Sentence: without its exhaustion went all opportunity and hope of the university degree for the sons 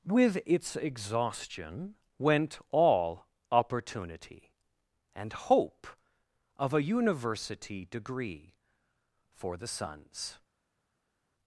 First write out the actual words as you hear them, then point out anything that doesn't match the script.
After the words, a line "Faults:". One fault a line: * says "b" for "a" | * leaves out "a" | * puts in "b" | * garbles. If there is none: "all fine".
with its exhaustion went all opportunity and hope of a university degree for the sons
Faults:
* says "with" for "without"
* says "a" for "the"